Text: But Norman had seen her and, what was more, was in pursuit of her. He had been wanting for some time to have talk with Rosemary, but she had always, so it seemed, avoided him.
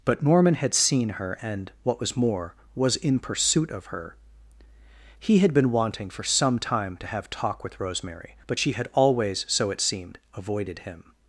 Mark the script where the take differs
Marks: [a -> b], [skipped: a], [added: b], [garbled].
But Norman had seen her and, what was more, was in pursuit of her. He had been wanting for some time to have talk with Rosemary, but she had always, so it seemed, avoided him.